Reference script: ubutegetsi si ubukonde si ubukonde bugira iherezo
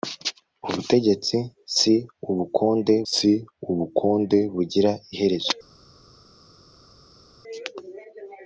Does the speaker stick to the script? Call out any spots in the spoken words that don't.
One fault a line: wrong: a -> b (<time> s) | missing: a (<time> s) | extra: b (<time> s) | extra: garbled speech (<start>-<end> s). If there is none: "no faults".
no faults